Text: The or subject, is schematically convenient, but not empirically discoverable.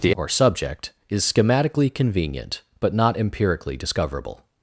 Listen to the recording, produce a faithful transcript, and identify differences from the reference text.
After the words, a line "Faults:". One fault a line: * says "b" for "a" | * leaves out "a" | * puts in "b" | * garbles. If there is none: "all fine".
The or subject, is schematically convenient, but not empirically discoverable.
Faults:
all fine